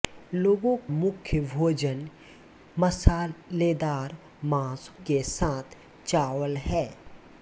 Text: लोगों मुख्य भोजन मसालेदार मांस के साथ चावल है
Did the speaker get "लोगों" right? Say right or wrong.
right